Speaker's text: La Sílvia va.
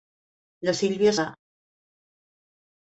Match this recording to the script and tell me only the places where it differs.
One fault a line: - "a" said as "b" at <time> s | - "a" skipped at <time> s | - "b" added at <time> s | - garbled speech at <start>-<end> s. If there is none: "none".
none